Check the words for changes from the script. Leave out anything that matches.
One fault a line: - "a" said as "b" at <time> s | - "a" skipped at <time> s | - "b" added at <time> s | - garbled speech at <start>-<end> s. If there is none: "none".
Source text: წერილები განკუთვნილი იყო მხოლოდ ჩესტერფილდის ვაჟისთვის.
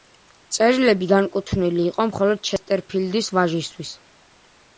none